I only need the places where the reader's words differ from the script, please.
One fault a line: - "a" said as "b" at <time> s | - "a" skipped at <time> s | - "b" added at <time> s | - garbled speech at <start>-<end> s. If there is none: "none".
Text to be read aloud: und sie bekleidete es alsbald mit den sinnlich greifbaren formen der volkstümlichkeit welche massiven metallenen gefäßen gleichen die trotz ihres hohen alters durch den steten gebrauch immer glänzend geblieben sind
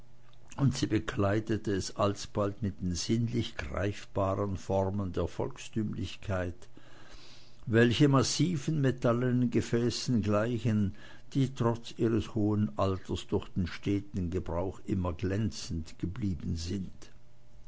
none